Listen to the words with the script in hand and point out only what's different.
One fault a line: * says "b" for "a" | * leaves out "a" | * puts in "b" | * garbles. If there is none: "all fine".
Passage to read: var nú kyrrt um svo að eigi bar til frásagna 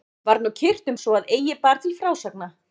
all fine